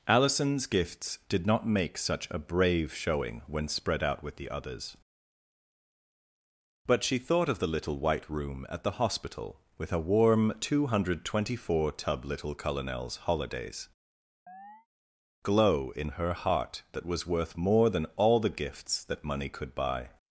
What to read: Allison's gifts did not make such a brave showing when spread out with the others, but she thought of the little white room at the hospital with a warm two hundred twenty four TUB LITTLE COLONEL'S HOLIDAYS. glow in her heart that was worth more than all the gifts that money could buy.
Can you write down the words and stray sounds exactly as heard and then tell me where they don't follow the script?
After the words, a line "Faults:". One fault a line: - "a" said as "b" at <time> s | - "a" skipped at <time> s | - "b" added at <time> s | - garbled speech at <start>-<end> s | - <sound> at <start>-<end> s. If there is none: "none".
Allison's gifts did not make such a brave showing when spread out with the others, but she thought of the little white room at the hospital with a warm two hundred twenty four TUB LITTLE COLONEL'S HOLIDAYS. glow in her heart that was worth more than all the gifts that money could buy.
Faults:
- chirp at 14.5-14.9 s